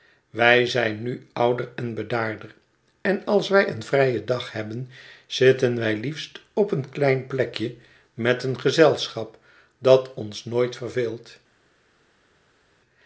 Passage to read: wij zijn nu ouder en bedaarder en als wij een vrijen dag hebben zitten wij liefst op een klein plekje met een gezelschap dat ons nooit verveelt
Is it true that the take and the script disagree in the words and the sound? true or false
false